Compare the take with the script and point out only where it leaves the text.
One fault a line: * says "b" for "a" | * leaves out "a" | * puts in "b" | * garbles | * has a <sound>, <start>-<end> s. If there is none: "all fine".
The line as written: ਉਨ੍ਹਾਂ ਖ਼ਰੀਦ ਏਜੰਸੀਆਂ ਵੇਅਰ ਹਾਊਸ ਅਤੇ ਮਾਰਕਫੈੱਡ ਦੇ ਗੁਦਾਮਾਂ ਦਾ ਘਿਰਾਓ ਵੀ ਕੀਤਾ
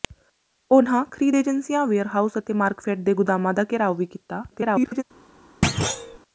* garbles
* has a thud, 5.6-6.2 s